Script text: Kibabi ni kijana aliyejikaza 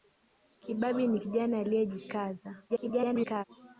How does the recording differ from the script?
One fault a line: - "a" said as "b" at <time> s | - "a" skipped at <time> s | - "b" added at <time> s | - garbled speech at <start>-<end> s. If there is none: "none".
- garbled speech at 2.7-3.4 s